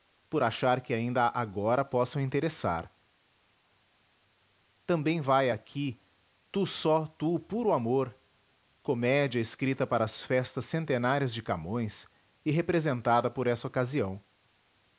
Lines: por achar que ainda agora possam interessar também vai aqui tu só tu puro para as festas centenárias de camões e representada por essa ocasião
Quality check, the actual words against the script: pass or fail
fail